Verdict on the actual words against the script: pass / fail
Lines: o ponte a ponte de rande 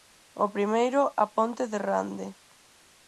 fail